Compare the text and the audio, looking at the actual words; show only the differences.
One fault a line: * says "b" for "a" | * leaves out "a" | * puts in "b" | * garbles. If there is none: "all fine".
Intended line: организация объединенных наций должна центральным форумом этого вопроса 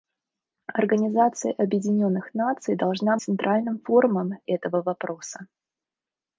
all fine